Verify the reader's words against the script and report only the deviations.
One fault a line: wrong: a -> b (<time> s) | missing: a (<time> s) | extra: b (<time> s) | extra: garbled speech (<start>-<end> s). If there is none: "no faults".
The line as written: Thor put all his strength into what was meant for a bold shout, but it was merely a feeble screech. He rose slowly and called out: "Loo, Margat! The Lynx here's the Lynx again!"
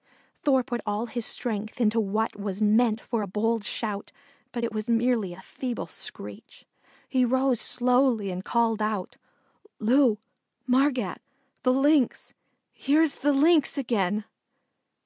no faults